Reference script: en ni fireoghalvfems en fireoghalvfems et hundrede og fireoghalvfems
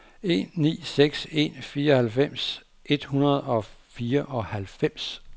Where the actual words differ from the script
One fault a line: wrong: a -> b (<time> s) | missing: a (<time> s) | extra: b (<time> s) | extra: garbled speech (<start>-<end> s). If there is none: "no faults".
wrong: fireoghalvfems -> seks (0.8 s)